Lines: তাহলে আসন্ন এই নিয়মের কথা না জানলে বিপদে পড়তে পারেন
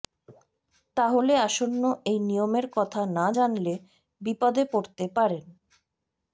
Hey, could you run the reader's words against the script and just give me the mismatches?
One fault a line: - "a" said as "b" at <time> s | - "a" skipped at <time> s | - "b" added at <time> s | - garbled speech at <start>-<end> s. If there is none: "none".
none